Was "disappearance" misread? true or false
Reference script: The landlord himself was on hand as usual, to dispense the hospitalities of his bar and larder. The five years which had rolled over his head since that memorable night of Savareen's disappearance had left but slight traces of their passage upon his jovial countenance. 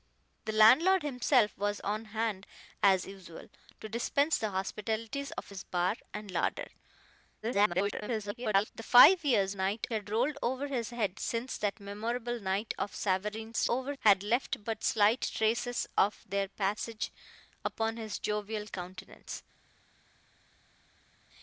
true